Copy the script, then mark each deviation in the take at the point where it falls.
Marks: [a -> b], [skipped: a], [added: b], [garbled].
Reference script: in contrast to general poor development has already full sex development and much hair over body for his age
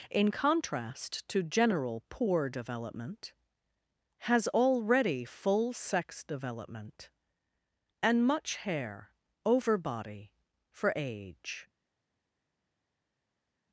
in contrast to general poor development has already full sex development and much hair over body for [skipped: his] age